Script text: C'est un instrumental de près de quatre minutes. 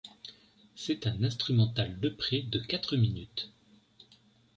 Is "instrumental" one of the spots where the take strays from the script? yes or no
no